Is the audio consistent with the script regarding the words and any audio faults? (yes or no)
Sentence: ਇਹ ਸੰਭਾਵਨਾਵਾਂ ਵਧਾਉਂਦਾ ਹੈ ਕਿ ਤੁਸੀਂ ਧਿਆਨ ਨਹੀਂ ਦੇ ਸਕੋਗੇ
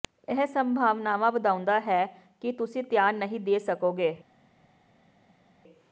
yes